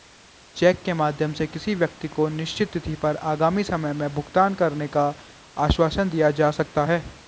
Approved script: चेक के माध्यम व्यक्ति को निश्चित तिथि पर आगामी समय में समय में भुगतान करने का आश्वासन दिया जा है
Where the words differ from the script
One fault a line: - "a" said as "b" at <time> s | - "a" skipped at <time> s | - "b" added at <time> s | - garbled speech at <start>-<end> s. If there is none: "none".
- "से किसी" added at 1.3 s
- "समय में" skipped at 4.1 s
- "सकता" added at 6.5 s